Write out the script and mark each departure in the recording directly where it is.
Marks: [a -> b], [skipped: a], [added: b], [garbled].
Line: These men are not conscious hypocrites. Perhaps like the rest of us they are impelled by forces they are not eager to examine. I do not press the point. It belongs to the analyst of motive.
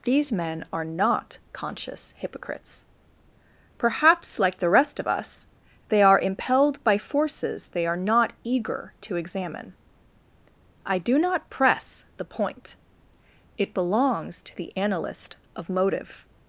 These men are not conscious hypocrites. Perhaps like the rest of us they are impelled by forces they are not eager to examine. I do not press the point. It belongs to the analyst of motive.